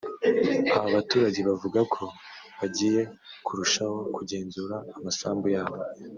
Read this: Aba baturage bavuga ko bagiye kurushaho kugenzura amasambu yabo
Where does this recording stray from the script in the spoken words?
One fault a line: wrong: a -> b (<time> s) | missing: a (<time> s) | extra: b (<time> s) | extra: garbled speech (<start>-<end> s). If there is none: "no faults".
no faults